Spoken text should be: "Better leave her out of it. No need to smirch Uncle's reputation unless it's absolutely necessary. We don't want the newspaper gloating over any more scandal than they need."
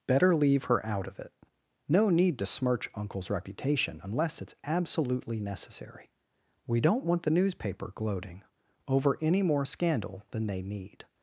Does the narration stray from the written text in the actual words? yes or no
no